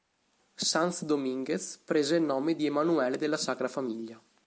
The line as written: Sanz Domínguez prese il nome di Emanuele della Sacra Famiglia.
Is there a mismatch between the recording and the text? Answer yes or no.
no